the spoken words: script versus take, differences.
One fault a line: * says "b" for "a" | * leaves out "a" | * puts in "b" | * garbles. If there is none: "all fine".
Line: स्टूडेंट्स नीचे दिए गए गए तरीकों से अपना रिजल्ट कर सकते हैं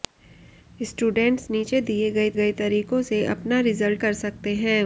all fine